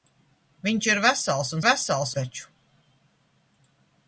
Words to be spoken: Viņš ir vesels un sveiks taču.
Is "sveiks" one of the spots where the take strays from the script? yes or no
yes